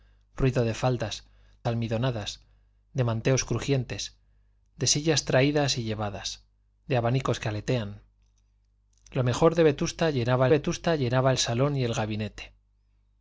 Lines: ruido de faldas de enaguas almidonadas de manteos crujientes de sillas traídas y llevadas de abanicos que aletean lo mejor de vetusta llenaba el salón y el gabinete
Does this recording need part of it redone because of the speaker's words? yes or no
yes